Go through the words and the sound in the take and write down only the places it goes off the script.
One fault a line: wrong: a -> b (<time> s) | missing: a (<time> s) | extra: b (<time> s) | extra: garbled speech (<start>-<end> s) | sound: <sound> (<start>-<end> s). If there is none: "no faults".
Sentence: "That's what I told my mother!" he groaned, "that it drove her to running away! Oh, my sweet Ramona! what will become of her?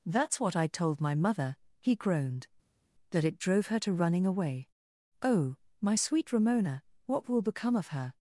no faults